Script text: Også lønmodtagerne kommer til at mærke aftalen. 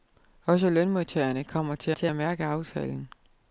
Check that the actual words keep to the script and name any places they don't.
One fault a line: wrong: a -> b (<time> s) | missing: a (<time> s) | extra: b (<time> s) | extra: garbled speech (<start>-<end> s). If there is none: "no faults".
extra: til (1.9 s)